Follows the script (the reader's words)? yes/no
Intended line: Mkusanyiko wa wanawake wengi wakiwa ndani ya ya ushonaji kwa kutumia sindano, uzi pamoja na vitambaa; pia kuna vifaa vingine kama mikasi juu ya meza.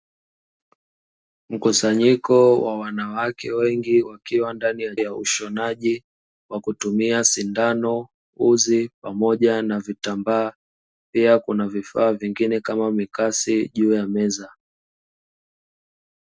yes